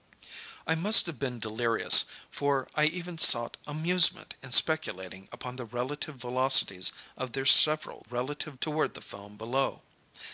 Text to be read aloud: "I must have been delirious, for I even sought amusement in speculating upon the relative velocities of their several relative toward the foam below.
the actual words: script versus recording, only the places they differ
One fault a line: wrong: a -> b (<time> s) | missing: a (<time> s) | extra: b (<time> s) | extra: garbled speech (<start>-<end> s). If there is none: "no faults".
no faults